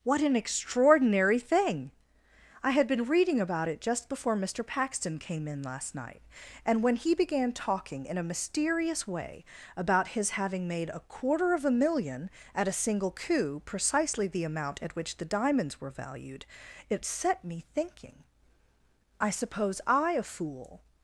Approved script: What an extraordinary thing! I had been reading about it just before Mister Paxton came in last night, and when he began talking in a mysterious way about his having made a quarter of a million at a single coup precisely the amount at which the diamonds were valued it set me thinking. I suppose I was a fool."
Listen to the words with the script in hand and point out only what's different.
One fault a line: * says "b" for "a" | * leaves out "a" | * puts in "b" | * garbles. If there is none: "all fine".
* leaves out "was"